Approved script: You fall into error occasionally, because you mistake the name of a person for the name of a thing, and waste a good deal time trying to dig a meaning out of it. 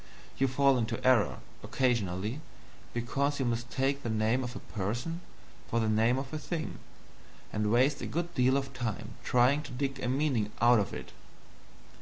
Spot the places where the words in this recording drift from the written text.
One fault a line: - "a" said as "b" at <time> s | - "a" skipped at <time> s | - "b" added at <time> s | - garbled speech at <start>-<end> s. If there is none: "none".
- "of" added at 8.6 s